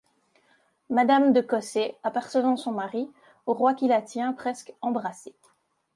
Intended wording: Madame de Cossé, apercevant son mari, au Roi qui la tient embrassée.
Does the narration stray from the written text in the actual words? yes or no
yes